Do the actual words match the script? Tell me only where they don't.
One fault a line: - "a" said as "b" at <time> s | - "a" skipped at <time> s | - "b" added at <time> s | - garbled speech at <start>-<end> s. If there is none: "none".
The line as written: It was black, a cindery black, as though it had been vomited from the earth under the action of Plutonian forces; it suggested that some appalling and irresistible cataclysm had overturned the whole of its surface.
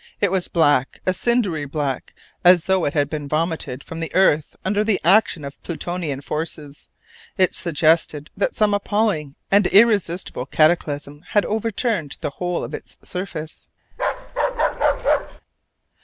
none